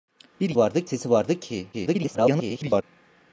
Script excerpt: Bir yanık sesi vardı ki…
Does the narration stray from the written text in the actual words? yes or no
yes